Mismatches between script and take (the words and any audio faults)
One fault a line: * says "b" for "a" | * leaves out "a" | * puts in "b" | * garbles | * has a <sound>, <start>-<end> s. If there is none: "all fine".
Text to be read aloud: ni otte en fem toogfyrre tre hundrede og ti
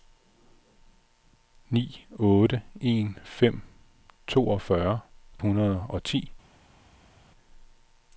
* leaves out "tre"